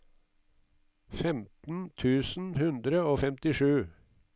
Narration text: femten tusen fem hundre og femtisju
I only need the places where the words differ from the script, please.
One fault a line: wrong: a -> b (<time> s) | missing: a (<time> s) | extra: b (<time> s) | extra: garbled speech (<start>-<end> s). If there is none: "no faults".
missing: fem (2.5 s)